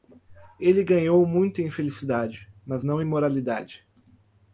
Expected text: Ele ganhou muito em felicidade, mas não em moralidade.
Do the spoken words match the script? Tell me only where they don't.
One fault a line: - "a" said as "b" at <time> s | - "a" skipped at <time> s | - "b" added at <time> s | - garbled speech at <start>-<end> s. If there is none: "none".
none